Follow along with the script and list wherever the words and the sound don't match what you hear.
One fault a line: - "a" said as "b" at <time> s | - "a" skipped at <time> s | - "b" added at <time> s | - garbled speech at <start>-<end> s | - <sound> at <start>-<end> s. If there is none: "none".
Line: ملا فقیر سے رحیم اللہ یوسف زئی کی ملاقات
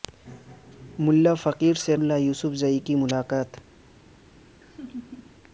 - "رحیم" skipped at 2.0 s
- laugh at 4.6-5.4 s